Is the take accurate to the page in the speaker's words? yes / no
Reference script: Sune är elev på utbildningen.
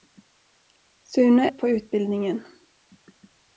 no